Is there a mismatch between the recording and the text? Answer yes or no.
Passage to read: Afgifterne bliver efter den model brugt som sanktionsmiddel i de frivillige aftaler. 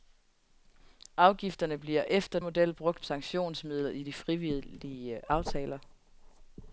yes